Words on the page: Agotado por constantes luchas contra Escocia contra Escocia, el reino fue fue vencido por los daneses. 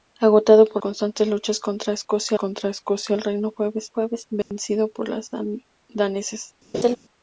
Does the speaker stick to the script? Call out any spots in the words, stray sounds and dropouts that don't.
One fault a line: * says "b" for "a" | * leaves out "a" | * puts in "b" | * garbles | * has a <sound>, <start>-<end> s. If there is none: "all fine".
* has a dropout, 4.4-4.5 s
* has a laugh, 6.7-7.0 s